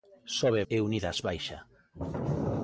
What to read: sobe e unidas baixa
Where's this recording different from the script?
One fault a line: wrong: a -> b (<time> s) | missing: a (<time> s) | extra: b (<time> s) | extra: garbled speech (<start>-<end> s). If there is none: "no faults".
no faults